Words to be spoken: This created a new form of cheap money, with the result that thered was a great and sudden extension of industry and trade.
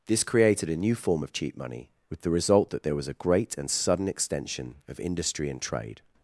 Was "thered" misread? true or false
true